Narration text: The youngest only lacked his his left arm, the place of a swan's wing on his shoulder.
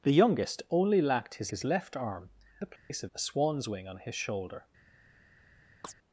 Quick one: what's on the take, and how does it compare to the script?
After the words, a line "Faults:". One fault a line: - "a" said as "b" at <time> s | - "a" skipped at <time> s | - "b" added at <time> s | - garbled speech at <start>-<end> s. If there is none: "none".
The youngest only lacked his his left arm, the place of a swan's wing on his shoulder.
Faults:
none